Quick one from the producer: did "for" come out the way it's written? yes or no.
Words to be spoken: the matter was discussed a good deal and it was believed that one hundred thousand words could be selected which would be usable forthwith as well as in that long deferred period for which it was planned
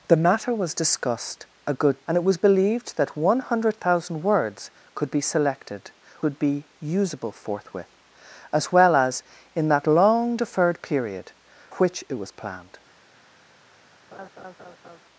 no